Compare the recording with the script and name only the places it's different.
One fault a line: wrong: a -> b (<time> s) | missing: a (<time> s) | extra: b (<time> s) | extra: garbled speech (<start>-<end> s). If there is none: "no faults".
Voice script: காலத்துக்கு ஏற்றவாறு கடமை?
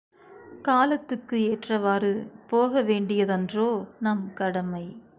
extra: போக வேண்டியதன்றோ நம் (2.5 s)